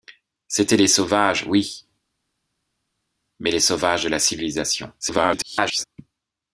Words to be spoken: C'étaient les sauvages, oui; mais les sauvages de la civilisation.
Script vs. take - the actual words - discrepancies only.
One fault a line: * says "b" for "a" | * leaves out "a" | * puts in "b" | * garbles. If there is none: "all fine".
* garbles